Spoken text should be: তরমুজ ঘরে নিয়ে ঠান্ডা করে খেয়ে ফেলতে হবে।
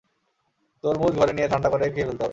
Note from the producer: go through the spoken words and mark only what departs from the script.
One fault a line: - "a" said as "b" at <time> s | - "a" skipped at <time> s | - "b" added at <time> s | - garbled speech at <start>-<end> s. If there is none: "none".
none